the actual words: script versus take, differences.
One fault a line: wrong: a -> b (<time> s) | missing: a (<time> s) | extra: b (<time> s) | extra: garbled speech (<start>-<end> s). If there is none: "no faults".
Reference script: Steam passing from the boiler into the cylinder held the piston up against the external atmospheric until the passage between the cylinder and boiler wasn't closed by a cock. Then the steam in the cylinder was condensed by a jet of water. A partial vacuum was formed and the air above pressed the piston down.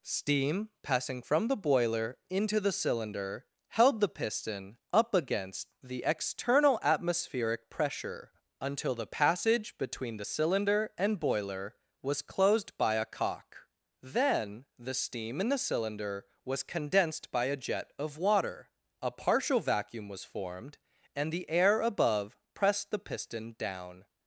extra: pressure (7.7 s)
wrong: wasn't -> was (12.0 s)